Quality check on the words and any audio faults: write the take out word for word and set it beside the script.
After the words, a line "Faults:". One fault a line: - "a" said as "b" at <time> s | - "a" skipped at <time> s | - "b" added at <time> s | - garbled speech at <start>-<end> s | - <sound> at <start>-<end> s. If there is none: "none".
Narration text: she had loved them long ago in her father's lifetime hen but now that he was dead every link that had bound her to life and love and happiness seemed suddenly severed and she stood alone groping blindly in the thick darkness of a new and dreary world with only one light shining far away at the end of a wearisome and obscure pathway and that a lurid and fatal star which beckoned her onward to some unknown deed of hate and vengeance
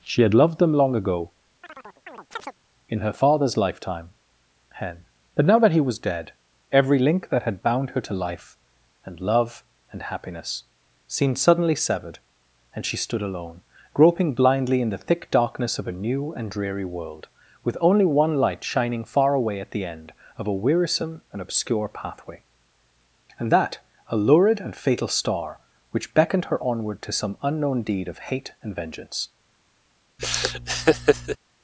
she had loved them long ago in her father's lifetime hen but now that he was dead every link that had bound her to life and love and happiness seemed suddenly severed and she stood alone groping blindly in the thick darkness of a new and dreary world with only one light shining far away at the end of a wearisome and obscure pathway and that a lurid and fatal star which beckoned her onward to some unknown deed of hate and vengeance
Faults:
- chirp at 1.6-2.6 s
- laugh at 30.2-31.4 s